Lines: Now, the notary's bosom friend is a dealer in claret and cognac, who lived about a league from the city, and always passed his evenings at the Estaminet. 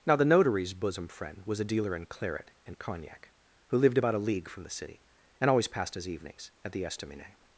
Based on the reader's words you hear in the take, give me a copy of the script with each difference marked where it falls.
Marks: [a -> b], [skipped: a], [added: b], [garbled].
Now, the notary's bosom friend [is -> was] a dealer in claret and cognac, who lived about a league from the city, and always passed his evenings at the Estaminet.